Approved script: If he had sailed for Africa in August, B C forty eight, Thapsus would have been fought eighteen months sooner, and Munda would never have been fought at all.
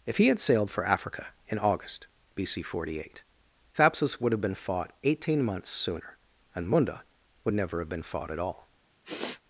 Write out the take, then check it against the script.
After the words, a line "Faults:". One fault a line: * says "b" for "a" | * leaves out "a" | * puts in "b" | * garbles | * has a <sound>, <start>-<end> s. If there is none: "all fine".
If he had sailed for Africa in August, B C forty eight, Thapsus would have been fought eighteen months sooner, and Munda would never have been fought at all.
Faults:
* has a sniff, 9.0-9.4 s